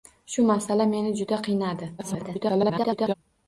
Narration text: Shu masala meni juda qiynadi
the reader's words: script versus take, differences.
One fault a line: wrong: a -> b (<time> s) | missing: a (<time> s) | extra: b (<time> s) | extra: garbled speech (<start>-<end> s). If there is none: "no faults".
extra: garbled speech (2.0-3.1 s)